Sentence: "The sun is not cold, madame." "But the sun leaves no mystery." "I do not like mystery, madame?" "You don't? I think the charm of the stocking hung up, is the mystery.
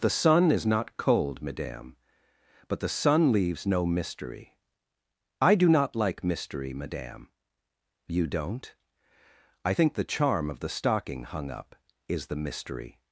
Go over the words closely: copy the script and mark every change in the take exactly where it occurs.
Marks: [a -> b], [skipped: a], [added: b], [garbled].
"The sun is not cold, madame." "But the sun leaves no mystery." "I do not like mystery, madame?" "You don't? I think the charm of the stocking hung up, is the mystery.